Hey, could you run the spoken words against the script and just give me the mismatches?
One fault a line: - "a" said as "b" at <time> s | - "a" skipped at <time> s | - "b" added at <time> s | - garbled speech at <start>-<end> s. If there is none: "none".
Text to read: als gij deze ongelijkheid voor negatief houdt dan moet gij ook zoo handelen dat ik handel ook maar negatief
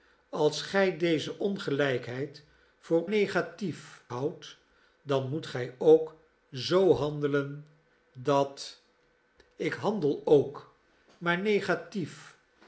none